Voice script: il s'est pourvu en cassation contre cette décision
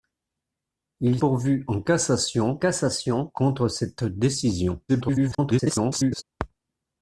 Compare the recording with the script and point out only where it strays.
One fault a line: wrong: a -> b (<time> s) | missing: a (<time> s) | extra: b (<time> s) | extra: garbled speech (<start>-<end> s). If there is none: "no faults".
missing: s'est (1.2 s)
extra: cassation (2.6 s)
extra: garbled speech (4.9-6.2 s)